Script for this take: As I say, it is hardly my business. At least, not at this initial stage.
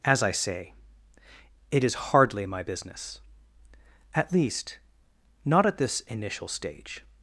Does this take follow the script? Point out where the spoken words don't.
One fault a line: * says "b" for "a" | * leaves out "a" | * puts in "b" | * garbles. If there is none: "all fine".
all fine